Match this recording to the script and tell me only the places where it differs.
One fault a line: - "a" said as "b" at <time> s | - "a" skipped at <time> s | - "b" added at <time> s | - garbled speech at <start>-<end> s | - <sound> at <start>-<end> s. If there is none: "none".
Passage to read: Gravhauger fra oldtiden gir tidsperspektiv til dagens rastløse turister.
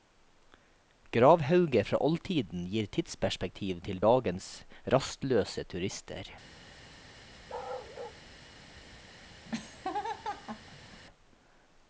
- bark at 7.5-8.2 s
- laugh at 9.5-11.0 s